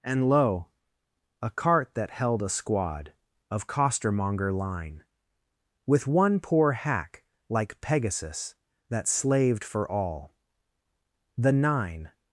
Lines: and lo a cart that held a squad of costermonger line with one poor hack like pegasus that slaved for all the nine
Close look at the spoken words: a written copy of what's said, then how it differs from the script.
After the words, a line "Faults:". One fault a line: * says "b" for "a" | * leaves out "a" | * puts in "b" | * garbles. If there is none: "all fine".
and lo a cart that held a squad of costermonger line with one poor hack like pegasus that slaved for all the nine
Faults:
all fine